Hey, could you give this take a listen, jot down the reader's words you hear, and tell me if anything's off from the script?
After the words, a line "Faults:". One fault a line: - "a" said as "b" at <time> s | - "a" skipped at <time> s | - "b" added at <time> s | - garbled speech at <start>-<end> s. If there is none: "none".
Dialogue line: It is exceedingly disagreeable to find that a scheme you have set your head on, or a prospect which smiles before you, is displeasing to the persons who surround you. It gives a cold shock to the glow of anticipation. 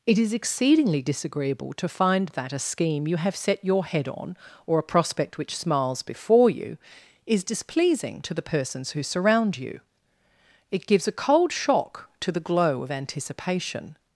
It is exceedingly disagreeable to find that a scheme you have set your head on, or a prospect which smiles before you, is displeasing to the persons who surround you. It gives a cold shock to the glow of anticipation.
Faults:
none